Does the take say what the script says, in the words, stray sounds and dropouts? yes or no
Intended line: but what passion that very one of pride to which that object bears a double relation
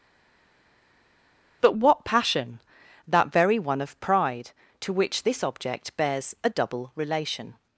no